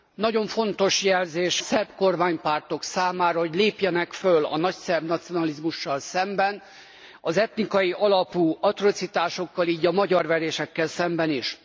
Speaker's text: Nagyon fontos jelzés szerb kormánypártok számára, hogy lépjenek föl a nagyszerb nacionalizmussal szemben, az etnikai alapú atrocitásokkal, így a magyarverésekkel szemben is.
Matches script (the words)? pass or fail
pass